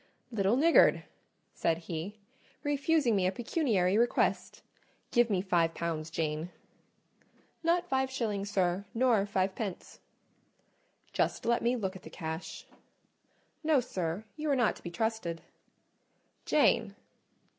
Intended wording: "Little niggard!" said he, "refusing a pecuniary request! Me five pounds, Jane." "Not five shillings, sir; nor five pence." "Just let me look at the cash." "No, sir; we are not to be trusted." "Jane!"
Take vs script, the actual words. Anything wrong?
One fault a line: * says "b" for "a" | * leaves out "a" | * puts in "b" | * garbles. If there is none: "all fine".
* puts in "me"
* puts in "Give"
* says "you" for "we"